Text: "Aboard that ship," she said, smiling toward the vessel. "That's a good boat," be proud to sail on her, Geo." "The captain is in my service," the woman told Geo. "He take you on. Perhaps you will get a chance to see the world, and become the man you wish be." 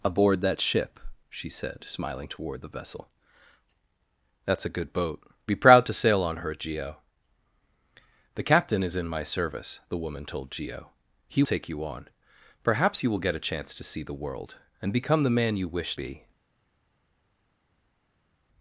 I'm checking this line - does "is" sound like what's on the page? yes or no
yes